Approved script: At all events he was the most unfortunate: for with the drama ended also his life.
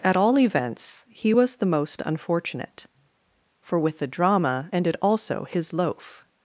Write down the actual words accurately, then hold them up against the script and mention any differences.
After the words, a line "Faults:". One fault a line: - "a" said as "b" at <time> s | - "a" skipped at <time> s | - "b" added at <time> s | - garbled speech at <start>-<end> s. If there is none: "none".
At all events he was the most unfortunate: for with the drama ended also his loaf.
Faults:
- "life" said as "loaf" at 5.7 s